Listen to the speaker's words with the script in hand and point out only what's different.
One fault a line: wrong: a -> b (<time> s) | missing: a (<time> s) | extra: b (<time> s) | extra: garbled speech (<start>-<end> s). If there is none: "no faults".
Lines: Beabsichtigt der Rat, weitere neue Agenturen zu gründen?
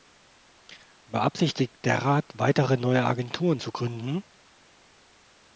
no faults